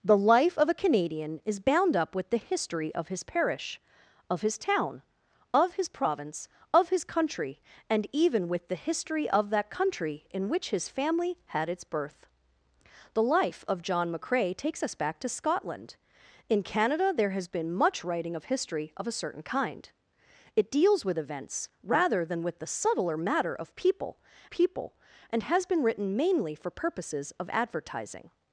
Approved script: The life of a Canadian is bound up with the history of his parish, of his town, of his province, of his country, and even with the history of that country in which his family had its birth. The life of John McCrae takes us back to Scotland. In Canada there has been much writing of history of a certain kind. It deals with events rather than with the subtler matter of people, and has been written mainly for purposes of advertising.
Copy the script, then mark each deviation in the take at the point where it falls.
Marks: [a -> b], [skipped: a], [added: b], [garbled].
The life of a Canadian is bound up with the history of his parish, of his town, of his province, of his country, and even with the history of that country in which his family had its birth. The life of John McCrae takes us back to Scotland. In Canada there has been much writing of history of a certain kind. It deals with events rather than with the subtler matter of people, [added: people] and has been written mainly for purposes of advertising.